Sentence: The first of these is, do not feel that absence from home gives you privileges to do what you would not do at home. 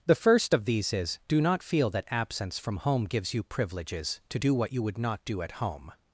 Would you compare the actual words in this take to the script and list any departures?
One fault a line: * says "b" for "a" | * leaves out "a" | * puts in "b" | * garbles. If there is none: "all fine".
all fine